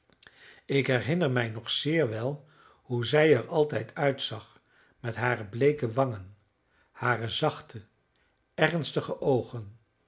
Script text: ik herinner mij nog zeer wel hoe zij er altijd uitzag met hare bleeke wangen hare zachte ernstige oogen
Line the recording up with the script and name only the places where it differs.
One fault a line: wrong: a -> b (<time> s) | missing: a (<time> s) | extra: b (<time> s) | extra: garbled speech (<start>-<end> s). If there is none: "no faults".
no faults